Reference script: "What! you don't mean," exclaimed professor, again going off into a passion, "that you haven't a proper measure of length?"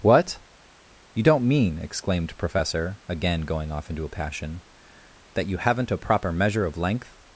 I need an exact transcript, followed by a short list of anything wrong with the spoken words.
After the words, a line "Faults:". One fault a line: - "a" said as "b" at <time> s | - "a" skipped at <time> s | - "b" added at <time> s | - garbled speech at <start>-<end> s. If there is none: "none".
"What! you don't mean," exclaimed professor, again going off into a passion, "that you haven't a proper measure of length?"
Faults:
none